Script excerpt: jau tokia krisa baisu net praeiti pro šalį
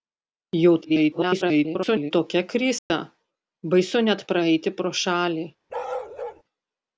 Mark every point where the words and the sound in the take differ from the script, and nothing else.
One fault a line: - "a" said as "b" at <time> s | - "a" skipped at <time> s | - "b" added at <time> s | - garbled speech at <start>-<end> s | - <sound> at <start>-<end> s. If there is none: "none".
- garbled speech at 0.8-2.1 s
- dropout at 2.8-2.9 s
- bark at 5.7-6.4 s